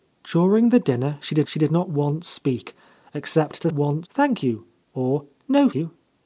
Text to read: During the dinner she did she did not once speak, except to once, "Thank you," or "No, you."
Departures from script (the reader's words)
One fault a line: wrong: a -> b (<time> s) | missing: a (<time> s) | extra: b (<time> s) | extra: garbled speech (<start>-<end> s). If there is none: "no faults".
no faults